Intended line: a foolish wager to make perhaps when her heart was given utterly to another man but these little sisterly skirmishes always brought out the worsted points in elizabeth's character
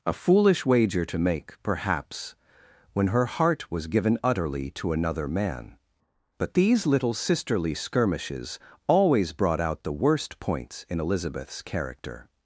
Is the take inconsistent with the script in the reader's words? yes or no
yes